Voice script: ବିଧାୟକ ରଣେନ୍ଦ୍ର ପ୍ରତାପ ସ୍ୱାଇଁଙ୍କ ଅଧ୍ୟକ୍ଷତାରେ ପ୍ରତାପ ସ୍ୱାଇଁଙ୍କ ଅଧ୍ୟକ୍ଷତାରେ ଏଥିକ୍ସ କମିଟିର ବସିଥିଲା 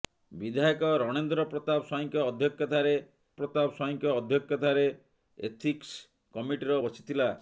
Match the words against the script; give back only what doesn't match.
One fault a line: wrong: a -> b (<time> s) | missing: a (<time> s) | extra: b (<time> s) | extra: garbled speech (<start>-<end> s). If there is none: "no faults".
no faults